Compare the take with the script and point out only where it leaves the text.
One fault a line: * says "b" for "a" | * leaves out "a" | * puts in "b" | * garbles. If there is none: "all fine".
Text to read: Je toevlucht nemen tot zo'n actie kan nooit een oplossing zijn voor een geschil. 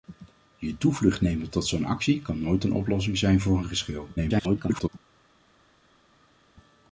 * garbles